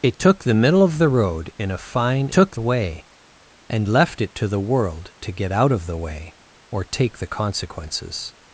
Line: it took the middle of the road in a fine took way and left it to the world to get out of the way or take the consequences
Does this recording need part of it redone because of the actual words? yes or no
no